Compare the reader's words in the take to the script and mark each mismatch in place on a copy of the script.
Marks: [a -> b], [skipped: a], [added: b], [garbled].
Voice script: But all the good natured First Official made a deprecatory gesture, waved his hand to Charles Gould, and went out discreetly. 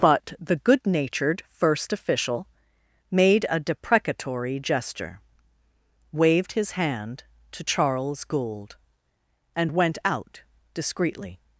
But [skipped: all] the good natured First Official made a deprecatory gesture, waved his hand to Charles Gould, and went out discreetly.